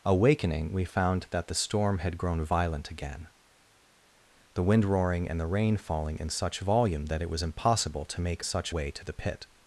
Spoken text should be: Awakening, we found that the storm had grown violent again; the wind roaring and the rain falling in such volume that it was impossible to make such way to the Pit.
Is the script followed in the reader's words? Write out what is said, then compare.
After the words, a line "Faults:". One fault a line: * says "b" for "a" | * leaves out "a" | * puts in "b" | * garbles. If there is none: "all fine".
Awakening, we found that the storm had grown violent again; the wind roaring and the rain falling in such volume that it was impossible to make such way to the Pit.
Faults:
all fine